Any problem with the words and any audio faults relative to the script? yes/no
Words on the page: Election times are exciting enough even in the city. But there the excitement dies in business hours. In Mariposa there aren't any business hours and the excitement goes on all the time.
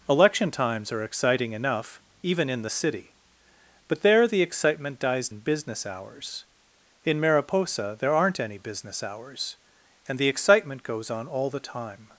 no